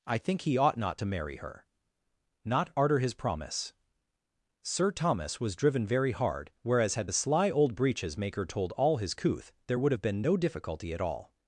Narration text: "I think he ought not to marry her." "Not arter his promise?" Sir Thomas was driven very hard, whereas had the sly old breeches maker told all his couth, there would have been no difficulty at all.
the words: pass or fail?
pass